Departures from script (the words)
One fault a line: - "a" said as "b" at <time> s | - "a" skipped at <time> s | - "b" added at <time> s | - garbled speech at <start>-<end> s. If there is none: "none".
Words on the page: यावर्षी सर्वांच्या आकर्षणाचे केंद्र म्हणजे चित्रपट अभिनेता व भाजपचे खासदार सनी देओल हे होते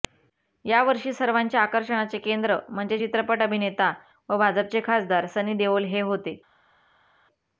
none